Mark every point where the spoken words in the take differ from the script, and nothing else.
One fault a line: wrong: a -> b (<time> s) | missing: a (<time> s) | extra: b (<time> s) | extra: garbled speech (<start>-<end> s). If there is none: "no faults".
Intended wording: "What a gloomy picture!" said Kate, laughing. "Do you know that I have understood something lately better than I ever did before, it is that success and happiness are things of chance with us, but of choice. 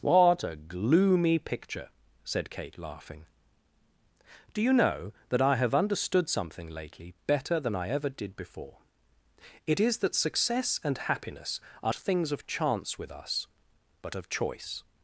no faults